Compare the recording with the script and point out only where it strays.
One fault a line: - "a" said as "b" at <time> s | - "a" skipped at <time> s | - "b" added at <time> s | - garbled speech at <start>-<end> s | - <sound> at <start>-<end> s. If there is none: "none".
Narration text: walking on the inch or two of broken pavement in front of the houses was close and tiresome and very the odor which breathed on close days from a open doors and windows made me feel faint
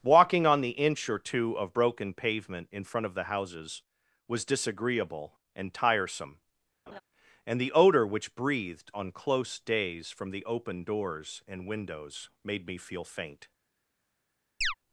- "close" said as "disagreeable" at 4.4 s
- laugh at 6.9-7.0 s
- "very" skipped at 7.6 s
- "a" said as "the" at 10.3 s
- chirp at 14.6-14.7 s